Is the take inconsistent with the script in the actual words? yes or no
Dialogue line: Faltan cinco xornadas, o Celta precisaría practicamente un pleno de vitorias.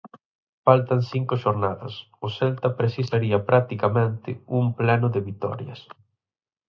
no